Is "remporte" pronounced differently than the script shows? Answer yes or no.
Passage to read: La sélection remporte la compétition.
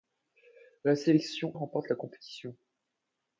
no